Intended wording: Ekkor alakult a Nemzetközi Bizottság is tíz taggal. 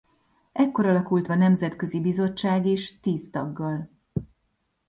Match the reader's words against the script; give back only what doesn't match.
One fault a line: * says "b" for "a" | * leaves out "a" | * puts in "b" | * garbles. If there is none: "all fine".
all fine